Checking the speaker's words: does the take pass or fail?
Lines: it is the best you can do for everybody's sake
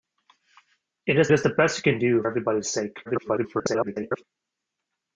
fail